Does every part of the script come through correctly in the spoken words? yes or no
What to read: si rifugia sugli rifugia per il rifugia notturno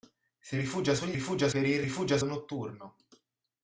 yes